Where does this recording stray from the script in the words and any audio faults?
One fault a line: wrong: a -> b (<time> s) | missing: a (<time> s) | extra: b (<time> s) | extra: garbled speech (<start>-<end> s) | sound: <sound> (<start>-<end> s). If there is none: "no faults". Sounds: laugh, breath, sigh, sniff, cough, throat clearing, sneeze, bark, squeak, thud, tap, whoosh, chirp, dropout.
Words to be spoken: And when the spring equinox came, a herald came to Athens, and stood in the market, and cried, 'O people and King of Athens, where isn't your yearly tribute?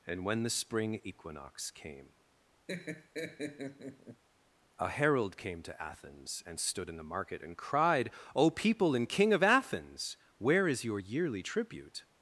sound: laugh (2.7-4.2 s)
wrong: isn't -> is (10.7 s)